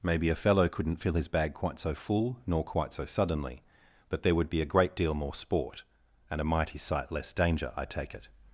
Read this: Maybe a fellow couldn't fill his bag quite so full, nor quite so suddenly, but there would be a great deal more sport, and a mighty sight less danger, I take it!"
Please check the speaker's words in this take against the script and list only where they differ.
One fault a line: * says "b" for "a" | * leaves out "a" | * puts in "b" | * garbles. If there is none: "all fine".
all fine